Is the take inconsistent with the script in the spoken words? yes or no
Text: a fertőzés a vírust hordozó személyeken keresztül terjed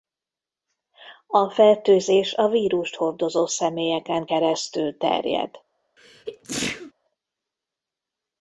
no